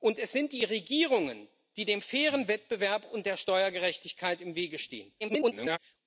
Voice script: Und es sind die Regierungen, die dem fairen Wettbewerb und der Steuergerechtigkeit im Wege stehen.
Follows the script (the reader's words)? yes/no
no